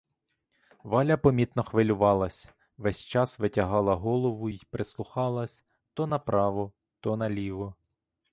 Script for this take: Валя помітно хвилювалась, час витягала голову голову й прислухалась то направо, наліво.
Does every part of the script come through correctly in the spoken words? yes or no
no